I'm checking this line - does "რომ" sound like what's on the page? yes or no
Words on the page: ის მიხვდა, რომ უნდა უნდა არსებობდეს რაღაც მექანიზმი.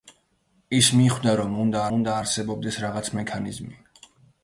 yes